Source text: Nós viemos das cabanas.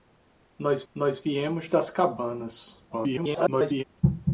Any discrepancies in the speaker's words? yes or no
yes